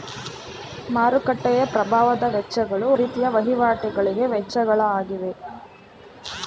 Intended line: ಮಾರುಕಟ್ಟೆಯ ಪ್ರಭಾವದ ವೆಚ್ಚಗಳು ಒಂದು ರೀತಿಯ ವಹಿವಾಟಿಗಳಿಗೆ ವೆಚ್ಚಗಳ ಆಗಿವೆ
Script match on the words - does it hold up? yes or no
no